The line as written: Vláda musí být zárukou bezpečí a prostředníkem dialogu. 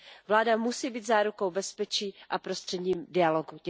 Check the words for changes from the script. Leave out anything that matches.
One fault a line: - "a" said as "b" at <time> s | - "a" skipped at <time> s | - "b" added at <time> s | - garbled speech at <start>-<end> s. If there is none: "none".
none